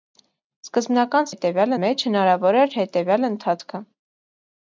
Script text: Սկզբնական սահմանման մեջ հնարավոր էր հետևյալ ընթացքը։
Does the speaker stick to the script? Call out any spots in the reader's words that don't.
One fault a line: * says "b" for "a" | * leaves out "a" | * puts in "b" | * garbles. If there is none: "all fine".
* says "հետևյալ" for "սահմանման"